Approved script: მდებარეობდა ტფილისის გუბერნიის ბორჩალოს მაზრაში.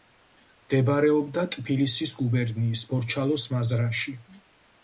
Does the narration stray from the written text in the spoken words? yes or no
no